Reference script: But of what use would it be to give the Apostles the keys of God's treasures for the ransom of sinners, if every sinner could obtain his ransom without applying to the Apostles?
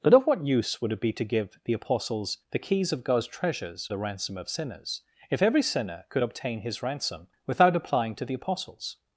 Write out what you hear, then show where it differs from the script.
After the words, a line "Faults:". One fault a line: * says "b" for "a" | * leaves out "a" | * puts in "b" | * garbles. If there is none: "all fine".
But of what use would it be to give the Apostles the keys of God's treasures the ransom of sinners, if every sinner could obtain his ransom without applying to the Apostles?
Faults:
* leaves out "for"